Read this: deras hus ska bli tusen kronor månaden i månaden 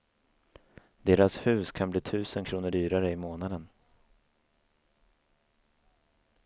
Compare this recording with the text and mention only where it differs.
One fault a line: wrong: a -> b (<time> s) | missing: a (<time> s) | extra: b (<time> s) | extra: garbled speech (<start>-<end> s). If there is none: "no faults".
wrong: ska -> kan (1.7 s)
wrong: månaden -> dyrare (2.7 s)